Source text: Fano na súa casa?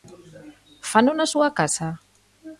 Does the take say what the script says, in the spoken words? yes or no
yes